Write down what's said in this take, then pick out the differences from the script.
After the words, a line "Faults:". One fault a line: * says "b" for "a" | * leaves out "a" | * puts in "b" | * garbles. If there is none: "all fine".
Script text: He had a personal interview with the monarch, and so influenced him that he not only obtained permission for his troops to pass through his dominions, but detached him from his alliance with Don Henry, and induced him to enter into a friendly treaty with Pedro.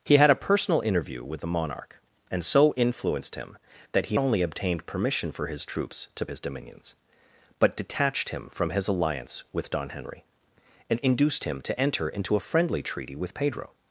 He had a personal interview with the monarch, and so influenced him that he only obtained permission for his troops to his dominions, but detached him from his alliance with Don Henry, and induced him to enter into a friendly treaty with Pedro.
Faults:
* leaves out "not"
* leaves out "pass through"